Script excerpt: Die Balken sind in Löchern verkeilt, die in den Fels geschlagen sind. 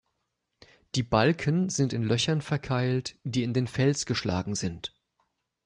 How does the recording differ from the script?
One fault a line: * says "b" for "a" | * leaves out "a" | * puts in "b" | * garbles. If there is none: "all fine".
all fine